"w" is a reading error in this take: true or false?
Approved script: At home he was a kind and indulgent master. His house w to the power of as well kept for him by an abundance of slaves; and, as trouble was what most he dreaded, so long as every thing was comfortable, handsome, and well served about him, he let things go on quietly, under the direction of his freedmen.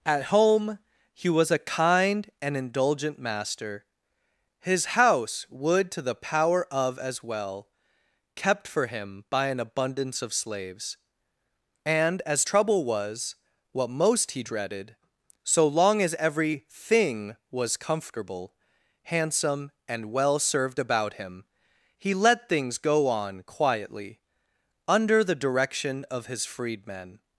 true